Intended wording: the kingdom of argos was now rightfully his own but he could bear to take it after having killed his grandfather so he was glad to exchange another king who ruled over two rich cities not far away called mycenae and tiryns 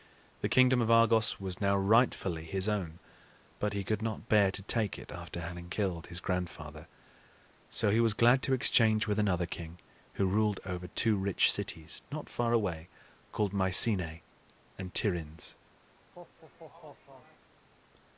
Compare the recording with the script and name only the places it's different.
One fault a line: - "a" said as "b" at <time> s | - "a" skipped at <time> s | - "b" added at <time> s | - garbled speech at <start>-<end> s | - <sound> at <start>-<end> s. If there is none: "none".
- "not" added at 4.0 s
- "with" added at 9.1 s
- laugh at 16.0-17.5 s